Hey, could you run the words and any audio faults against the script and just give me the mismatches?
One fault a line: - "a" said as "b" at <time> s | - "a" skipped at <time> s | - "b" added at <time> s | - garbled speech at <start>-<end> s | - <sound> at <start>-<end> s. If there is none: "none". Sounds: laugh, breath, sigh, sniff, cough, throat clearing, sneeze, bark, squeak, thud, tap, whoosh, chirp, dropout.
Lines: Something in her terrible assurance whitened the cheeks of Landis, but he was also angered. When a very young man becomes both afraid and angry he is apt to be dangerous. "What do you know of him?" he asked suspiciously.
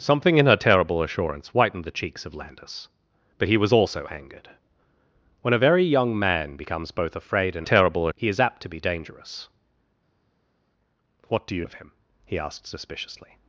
- "angry" said as "terrible" at 7.6 s
- "know" skipped at 11.7 s